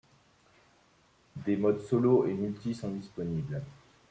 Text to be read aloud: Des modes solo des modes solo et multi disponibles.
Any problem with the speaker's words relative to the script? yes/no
yes